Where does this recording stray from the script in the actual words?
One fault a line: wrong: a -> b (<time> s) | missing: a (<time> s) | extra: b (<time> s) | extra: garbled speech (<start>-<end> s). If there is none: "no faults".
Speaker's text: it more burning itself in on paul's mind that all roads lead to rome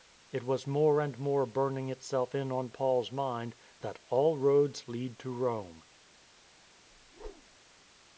extra: was more and (0.4 s)